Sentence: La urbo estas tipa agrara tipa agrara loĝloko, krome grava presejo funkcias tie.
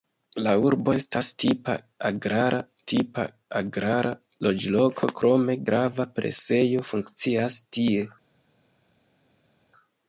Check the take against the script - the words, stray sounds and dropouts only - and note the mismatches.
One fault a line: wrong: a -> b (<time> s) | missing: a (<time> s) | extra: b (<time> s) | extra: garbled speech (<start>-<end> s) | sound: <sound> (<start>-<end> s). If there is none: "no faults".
no faults